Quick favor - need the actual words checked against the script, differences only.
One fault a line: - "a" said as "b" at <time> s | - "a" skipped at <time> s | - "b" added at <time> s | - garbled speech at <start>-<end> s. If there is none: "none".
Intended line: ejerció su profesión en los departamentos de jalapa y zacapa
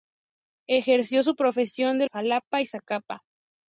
- "los departamentos de" skipped at 2.1 s